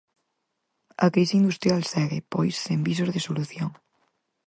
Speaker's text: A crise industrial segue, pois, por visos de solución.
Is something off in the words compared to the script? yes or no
yes